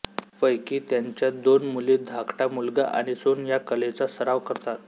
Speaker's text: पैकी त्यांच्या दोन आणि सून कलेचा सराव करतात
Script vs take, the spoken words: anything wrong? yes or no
yes